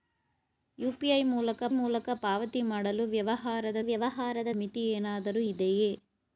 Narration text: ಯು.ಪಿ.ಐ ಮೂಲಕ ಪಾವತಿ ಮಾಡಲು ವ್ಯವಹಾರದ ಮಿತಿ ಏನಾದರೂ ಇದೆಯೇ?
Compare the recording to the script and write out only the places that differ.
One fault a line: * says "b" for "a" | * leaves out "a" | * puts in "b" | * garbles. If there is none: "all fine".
* puts in "ಮೂಲಕ"
* puts in "ವ್ಯವಹಾರದ"